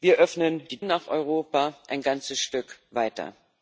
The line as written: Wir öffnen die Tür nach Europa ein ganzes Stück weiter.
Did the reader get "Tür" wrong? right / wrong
wrong